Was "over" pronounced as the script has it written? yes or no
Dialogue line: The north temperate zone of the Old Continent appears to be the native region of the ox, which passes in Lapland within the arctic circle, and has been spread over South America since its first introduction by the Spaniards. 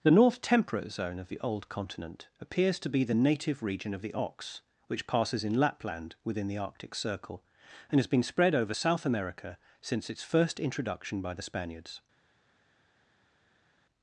yes